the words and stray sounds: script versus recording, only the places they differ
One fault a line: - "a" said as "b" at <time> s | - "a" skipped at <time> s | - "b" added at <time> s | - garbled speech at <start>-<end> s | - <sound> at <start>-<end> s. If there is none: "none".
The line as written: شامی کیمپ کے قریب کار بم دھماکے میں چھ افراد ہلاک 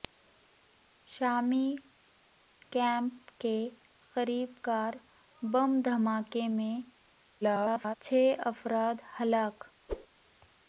- garbled speech at 7.4-8.0 s
- whoosh at 9.9-10.1 s